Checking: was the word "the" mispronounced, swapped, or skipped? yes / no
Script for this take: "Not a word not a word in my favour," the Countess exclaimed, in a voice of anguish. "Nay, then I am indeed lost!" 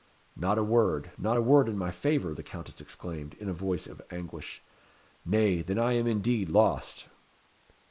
no